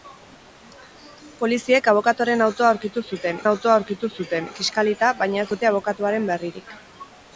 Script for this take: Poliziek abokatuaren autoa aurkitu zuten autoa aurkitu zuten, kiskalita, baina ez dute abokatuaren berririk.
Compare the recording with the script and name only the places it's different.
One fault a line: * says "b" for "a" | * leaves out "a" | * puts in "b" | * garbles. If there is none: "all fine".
all fine